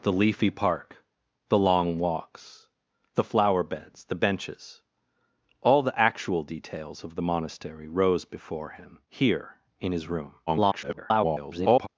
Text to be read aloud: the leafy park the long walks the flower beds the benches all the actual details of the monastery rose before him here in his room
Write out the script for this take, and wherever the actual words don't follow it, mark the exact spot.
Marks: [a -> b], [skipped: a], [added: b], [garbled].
the leafy park the long walks the flower beds the benches all the actual details of the monastery rose before him here in his room [garbled]